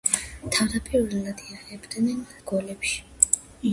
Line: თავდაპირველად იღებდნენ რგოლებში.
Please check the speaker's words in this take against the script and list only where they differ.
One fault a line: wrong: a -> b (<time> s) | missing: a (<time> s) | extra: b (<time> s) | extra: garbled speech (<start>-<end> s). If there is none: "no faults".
no faults